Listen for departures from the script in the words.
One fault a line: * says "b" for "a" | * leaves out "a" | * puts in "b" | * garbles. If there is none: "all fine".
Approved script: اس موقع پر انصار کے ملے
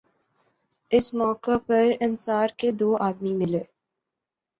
* puts in "دو آدمی"